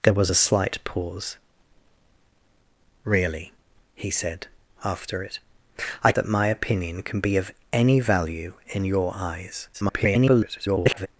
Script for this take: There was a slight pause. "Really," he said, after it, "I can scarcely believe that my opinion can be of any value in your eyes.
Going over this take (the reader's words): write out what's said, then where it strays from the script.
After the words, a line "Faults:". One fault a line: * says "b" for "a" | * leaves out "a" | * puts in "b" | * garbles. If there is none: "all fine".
There was a slight pause. "Really," he said, after it, "I that my opinion can be of any value in your eyes. [garbled]
Faults:
* leaves out "can scarcely believe"
* garbles